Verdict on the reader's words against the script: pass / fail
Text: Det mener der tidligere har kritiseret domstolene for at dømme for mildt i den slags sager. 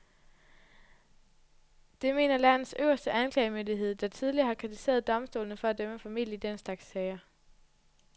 fail